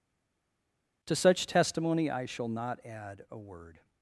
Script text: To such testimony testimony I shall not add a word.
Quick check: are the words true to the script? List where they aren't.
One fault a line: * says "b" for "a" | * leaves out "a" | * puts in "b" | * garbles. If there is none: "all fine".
* leaves out "testimony"